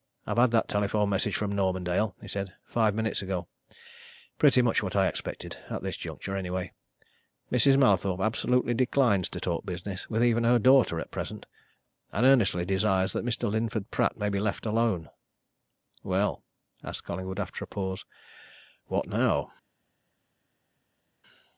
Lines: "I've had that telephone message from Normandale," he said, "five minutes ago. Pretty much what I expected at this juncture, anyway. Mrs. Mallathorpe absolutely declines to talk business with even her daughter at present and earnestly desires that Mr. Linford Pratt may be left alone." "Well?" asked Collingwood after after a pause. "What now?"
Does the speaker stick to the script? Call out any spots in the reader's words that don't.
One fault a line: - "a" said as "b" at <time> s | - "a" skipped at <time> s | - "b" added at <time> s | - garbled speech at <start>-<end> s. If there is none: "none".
- "after" skipped at 17.6 s